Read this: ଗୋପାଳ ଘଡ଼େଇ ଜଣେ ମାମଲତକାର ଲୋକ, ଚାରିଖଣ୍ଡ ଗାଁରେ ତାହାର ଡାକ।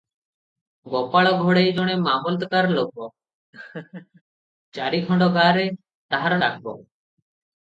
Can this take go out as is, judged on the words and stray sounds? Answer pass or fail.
fail